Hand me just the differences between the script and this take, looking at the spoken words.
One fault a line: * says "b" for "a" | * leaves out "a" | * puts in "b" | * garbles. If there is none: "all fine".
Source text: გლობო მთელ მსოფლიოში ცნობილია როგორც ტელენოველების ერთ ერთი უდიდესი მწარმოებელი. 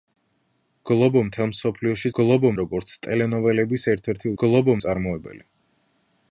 * says "გლობო" for "ცნობილია"
* says "გლობო" for "უდიდესი"